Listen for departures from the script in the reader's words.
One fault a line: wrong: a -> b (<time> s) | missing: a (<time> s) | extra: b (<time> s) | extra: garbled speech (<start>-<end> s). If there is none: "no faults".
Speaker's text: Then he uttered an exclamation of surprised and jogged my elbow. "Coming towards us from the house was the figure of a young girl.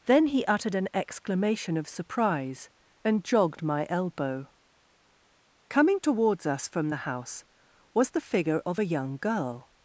wrong: surprised -> surprise (1.9 s)